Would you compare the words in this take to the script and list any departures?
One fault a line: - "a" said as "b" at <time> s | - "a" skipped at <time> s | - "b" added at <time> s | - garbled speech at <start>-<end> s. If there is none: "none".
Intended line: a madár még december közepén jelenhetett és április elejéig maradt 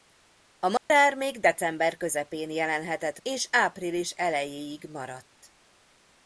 none